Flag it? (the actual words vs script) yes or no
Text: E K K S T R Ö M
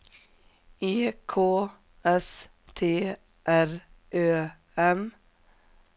yes